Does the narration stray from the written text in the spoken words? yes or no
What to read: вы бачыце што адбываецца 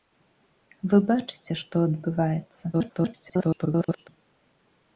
yes